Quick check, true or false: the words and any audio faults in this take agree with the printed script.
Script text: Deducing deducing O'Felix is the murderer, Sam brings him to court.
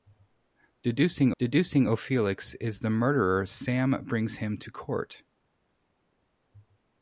true